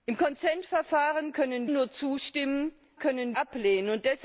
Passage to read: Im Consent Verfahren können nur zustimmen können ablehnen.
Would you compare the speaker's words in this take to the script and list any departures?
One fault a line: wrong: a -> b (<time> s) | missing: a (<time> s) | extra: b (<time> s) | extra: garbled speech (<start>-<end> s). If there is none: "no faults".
no faults